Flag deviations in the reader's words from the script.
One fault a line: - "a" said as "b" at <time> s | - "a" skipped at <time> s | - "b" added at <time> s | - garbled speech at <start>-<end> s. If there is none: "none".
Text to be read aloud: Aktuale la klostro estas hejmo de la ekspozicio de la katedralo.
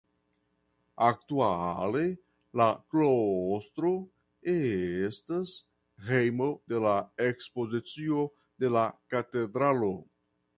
none